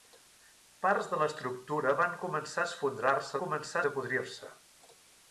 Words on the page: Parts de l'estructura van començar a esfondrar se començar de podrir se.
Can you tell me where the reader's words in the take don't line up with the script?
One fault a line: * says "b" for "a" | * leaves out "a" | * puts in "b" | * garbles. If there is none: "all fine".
all fine